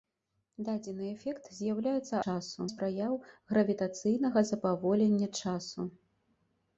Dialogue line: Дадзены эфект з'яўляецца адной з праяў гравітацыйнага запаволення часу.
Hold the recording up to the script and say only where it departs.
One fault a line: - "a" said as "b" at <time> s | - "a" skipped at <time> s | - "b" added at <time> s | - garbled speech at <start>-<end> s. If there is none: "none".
- "адной" said as "часу" at 2.2 s